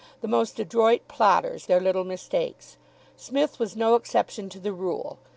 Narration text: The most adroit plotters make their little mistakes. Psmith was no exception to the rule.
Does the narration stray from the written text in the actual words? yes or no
yes